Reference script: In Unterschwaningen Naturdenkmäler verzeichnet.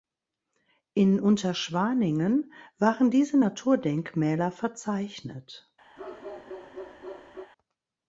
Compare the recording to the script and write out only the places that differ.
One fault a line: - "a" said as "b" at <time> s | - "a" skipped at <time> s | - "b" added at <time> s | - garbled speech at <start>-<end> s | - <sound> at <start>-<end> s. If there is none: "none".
- "waren diese" added at 2.8 s
- bark at 6.0-7.5 s